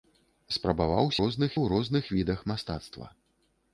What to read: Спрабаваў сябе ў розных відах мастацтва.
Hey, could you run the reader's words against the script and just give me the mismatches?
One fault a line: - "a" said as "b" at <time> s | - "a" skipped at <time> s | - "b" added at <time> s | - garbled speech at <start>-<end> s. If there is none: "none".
- "сябе" said as "розных" at 1.2 s